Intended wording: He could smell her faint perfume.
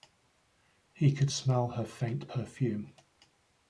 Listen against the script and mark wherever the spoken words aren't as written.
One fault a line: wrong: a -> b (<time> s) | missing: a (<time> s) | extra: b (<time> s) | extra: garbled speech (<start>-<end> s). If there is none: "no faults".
no faults